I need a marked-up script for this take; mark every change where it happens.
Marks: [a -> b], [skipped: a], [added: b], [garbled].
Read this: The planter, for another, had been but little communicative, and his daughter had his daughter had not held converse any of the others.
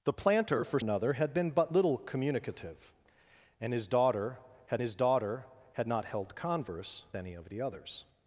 The planter, for another, had been but little communicative, and his daughter had his daughter had not held converse any of the others.